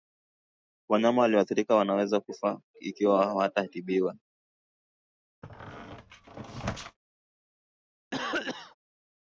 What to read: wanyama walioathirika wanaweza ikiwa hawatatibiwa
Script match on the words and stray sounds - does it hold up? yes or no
no